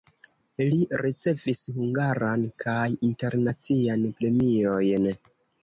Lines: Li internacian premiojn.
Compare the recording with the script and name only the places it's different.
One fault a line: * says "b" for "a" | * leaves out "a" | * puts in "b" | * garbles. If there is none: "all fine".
* puts in "ricevis hungaran kaj"